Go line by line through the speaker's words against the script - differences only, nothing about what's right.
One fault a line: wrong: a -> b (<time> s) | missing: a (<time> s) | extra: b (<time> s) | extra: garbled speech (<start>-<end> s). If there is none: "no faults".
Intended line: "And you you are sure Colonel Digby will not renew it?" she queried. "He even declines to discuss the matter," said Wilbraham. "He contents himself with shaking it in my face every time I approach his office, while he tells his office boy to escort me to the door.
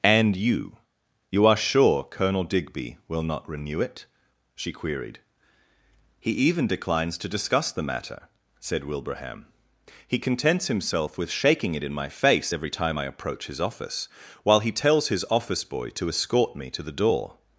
no faults